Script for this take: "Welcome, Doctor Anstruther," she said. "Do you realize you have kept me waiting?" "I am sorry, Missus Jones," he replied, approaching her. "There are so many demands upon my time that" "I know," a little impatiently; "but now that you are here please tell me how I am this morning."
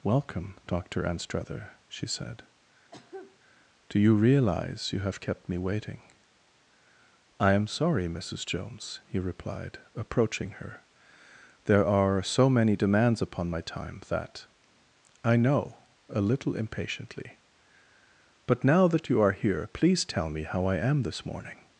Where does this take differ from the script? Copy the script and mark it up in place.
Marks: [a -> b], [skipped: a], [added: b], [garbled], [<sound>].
"Welcome, Doctor Anstruther," she said. [cough] "Do you realize you have kept me waiting?" "I am sorry, Missus Jones," he replied, approaching her. "There are so many demands upon my time that" "I know," a little impatiently; "but now that you are here please tell me how I am this morning."